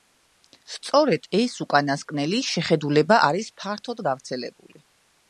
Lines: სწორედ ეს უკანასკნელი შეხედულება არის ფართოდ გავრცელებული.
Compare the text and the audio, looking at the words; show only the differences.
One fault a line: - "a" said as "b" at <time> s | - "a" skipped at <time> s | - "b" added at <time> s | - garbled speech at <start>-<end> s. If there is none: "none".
none